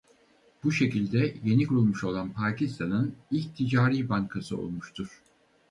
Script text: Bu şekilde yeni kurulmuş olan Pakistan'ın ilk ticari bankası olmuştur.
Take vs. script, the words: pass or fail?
pass